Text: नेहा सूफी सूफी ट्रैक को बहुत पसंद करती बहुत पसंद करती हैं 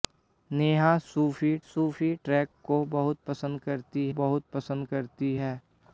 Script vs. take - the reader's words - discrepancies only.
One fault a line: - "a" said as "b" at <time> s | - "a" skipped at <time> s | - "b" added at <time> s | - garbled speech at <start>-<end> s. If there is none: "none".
none